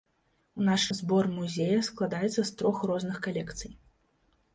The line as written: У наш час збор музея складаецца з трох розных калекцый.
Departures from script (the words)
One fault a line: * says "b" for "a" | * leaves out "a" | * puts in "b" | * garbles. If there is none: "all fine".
* leaves out "час"